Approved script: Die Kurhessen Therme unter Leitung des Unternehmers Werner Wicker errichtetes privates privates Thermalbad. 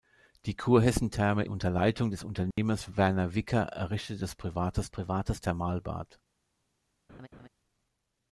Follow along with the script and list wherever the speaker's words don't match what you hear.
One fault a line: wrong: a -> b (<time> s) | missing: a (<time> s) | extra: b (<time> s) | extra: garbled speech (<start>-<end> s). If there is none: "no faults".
no faults